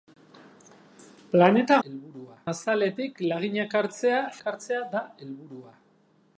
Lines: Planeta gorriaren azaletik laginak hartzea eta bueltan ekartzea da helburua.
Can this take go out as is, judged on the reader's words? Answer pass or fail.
fail